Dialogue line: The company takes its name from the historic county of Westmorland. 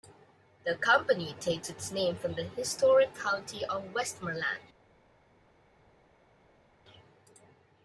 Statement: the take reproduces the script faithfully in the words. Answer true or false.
true